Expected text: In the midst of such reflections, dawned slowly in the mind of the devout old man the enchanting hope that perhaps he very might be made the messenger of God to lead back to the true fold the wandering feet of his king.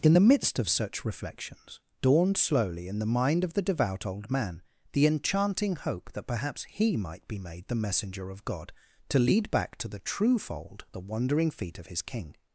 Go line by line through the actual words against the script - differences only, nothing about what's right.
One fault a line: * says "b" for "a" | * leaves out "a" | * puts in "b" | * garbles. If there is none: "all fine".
* leaves out "very"